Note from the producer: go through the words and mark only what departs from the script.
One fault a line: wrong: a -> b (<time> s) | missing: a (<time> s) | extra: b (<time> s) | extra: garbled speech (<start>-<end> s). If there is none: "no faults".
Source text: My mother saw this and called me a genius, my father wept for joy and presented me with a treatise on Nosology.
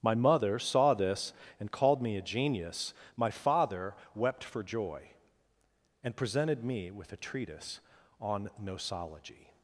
no faults